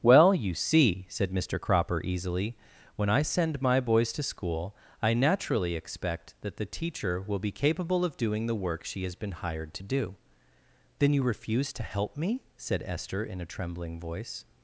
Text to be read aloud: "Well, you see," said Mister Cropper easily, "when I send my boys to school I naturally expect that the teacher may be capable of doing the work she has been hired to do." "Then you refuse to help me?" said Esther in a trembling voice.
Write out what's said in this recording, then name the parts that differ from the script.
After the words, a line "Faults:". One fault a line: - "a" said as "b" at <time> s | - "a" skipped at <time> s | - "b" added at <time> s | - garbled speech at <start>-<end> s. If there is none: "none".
"Well, you see," said Mister Cropper easily, "when I send my boys to school I naturally expect that the teacher will be capable of doing the work she has been hired to do." "Then you refuse to help me?" said Esther in a trembling voice.
Faults:
- "may" said as "will" at 7.2 s